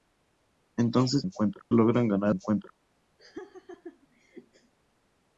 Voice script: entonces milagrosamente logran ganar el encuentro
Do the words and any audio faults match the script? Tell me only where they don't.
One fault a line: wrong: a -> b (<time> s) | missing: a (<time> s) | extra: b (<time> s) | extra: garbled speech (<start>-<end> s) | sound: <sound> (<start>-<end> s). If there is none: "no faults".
wrong: milagrosamente -> encuentro (1.2 s)
missing: el (2.3 s)
sound: laugh (3.2-4.7 s)